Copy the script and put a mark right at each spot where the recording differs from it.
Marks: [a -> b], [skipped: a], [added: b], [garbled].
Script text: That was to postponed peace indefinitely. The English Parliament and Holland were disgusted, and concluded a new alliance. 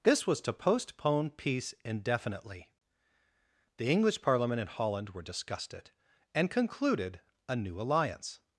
[That -> This] was to [postponed -> postpone] peace indefinitely. The English Parliament and Holland were disgusted, and concluded a new alliance.